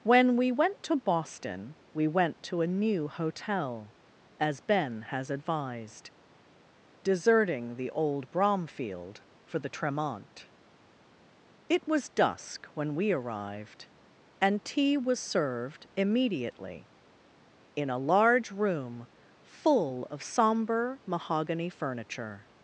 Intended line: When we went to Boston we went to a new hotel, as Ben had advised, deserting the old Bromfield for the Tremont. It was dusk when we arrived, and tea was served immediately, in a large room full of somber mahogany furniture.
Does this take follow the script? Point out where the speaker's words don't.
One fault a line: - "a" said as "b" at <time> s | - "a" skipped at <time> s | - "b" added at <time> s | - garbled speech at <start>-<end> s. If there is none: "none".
- "had" said as "has" at 5.1 s